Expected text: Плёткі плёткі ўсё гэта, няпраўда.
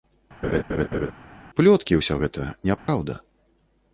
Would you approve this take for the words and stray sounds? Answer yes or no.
no